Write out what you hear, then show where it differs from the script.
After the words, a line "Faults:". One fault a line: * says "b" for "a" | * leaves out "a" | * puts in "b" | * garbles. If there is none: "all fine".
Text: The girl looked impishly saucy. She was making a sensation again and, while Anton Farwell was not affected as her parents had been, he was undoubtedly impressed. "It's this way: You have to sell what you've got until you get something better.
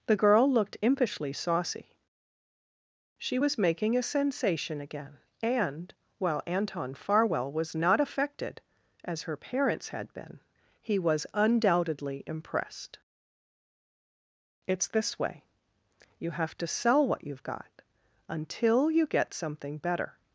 The girl looked impishly saucy. She was making a sensation again and, while Anton Farwell was not affected as her parents had been, he was undoubtedly impressed. "It's this way: You have to sell what you've got until you get something better.
Faults:
all fine